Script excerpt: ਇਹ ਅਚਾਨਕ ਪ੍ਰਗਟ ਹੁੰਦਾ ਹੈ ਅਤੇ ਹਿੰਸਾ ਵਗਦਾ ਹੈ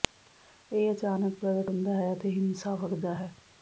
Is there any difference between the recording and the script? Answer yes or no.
no